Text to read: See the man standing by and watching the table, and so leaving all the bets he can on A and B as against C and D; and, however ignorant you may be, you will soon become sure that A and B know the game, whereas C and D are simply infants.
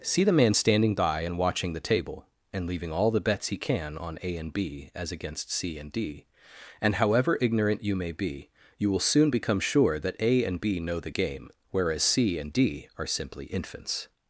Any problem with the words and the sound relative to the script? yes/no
yes